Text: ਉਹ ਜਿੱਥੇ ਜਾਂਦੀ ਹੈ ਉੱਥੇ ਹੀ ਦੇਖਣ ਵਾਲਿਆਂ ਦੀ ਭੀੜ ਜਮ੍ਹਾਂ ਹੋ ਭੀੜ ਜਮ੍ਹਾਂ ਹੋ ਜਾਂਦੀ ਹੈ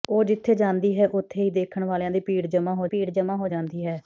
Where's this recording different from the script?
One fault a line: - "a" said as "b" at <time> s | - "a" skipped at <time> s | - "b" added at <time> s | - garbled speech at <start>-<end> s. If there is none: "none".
none